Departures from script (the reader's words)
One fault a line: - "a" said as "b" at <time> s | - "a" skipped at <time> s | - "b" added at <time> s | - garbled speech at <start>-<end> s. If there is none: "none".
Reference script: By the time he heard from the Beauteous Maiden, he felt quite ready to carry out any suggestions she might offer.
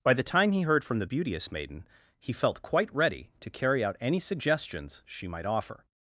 none